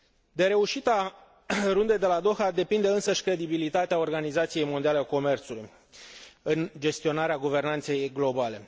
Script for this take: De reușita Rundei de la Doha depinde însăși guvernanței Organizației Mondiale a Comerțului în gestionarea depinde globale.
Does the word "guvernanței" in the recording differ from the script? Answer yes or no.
yes